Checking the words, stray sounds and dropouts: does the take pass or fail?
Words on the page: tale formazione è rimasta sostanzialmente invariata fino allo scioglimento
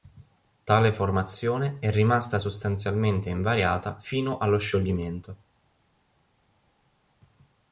pass